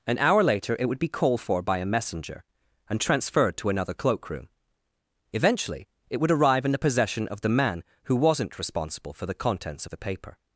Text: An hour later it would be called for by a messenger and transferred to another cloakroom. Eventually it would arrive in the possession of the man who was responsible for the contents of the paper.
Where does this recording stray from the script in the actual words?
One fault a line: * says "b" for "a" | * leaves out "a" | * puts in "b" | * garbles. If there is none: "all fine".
* says "wasn't" for "was"